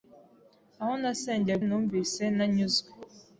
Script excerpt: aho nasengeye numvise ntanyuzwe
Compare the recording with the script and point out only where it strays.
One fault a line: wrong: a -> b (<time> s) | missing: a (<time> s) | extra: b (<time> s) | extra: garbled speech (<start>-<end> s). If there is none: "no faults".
no faults